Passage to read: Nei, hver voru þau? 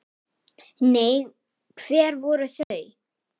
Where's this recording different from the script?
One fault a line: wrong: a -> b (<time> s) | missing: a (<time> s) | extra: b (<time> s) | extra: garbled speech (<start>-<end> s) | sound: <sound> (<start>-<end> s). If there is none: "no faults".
sound: dropout (2.6-2.7 s)